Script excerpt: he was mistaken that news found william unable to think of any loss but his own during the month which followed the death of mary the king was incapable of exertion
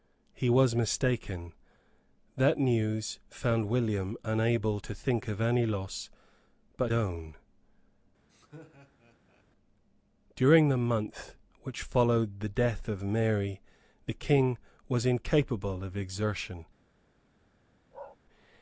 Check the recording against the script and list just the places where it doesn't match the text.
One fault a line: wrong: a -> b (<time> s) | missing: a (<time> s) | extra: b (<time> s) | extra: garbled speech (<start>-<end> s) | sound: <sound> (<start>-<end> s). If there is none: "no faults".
missing: his (6.9 s)
sound: laugh (8.3-9.5 s)
sound: bark (17.9-18.2 s)